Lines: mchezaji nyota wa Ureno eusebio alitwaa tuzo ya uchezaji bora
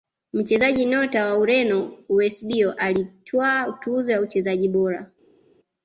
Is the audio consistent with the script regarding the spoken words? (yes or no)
yes